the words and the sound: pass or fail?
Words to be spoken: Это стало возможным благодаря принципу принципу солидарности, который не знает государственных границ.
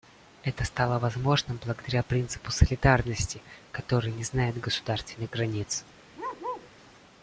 fail